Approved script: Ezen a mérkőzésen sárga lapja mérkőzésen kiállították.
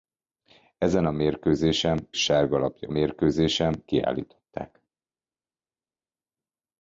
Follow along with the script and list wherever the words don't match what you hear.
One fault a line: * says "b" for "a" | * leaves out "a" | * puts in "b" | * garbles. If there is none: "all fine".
all fine